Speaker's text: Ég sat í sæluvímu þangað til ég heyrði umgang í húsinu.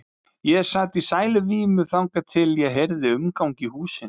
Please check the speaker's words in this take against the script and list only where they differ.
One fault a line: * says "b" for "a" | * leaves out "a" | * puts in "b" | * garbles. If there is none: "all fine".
all fine